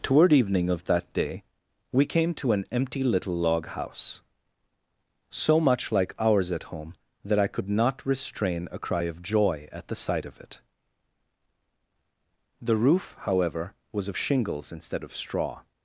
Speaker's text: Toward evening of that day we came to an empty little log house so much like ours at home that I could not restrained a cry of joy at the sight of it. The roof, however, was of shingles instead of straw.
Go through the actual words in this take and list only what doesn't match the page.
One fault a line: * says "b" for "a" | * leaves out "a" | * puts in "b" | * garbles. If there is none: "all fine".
* says "restrain" for "restrained"